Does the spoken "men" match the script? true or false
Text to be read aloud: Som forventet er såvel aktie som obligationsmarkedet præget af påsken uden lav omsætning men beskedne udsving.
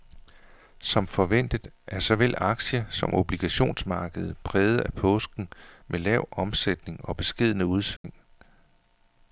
false